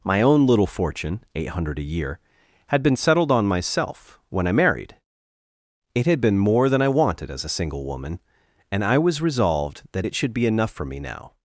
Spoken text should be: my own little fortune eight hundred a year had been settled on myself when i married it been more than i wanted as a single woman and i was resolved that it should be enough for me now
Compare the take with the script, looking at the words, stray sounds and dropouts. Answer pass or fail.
fail